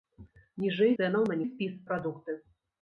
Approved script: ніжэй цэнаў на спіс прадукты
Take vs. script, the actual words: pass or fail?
pass